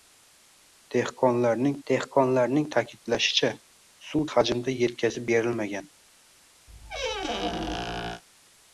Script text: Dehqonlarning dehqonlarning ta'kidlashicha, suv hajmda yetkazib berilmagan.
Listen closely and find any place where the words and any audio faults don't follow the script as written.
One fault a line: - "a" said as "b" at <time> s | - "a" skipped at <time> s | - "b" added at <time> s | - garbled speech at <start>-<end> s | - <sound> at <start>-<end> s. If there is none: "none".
- squeak at 6.7-8.2 s